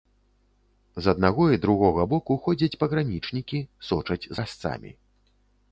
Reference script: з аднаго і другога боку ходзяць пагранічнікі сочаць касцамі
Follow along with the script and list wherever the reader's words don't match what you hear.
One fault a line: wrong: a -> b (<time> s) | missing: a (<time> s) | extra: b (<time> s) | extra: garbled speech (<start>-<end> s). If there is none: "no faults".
no faults